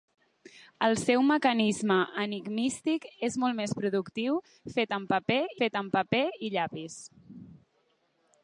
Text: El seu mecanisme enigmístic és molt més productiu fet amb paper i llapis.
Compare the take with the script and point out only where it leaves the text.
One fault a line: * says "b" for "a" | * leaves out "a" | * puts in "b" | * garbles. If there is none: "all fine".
* puts in "fet amb paper"